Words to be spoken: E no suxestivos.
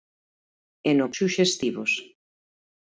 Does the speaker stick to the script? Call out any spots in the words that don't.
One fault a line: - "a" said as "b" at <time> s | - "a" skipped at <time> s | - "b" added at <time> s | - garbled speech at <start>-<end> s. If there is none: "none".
none